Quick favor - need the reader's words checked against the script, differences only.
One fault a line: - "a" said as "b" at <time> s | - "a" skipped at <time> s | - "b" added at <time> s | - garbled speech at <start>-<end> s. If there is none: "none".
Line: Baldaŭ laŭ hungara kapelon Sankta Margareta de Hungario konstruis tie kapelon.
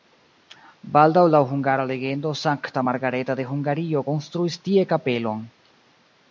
- "kapelon" said as "legendo" at 1.9 s